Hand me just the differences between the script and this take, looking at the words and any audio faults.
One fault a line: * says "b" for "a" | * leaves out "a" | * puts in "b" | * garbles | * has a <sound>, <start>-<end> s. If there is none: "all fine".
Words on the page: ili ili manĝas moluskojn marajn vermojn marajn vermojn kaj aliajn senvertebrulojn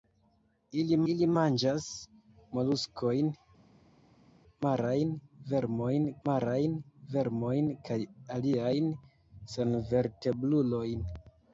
all fine